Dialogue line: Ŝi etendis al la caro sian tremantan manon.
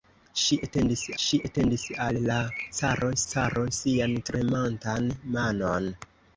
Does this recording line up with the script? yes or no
no